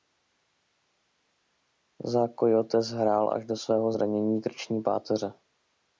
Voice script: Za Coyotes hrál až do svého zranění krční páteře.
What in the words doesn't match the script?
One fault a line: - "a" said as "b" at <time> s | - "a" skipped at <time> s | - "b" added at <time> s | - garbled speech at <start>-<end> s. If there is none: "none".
none